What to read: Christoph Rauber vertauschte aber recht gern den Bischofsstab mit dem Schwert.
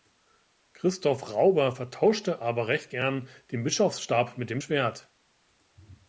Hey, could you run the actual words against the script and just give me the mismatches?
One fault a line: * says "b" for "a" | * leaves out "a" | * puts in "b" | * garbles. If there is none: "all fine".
all fine